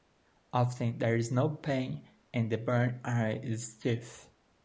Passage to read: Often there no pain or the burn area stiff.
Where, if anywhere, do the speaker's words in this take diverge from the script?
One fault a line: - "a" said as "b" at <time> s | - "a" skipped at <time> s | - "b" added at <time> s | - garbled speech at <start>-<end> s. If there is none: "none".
- "is" added at 1.2 s
- "or" said as "and" at 2.3 s
- "is" added at 3.4 s